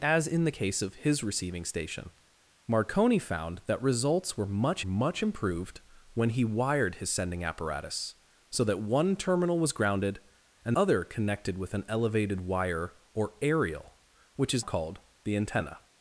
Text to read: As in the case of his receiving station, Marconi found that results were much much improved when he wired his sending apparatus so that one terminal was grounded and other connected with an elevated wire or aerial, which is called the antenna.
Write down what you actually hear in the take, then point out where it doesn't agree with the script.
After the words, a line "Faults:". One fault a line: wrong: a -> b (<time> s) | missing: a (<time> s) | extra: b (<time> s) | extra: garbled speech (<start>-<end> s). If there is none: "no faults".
As in the case of his receiving station, Marconi found that results were much much improved when he wired his sending apparatus so that one terminal was grounded and other connected with an elevated wire or aerial, which is called the antenna.
Faults:
no faults